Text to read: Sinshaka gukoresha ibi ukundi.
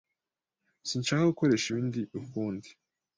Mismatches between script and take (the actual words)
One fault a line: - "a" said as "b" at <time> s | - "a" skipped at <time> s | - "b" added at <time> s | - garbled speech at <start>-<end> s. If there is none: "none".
none